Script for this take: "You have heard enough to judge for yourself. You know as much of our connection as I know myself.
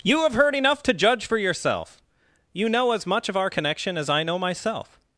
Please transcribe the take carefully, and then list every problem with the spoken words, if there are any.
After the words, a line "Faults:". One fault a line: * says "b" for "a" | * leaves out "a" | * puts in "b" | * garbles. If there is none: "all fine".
"You have heard enough to judge for yourself. You know as much of our connection as I know myself.
Faults:
all fine